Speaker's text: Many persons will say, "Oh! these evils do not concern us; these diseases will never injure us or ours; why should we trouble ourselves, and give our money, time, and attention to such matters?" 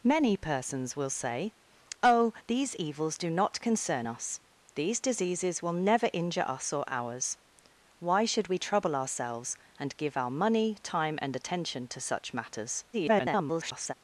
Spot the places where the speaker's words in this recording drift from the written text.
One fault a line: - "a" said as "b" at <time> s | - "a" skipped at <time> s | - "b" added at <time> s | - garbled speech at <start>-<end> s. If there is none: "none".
- garbled speech at 12.9-13.9 s